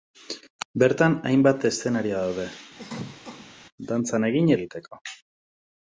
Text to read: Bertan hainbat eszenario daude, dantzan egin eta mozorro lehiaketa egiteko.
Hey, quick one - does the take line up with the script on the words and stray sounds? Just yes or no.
no